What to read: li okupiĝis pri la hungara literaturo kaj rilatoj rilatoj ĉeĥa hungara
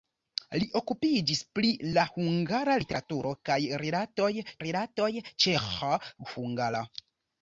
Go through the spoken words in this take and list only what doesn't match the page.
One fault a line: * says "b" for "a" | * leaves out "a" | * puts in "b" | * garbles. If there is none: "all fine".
all fine